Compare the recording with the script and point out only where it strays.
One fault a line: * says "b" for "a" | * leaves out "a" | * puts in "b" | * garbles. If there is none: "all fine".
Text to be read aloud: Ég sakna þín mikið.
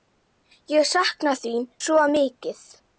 * puts in "svo"